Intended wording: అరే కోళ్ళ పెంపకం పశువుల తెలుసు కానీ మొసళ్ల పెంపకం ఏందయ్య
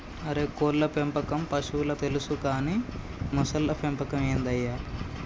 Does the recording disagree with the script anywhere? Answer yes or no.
no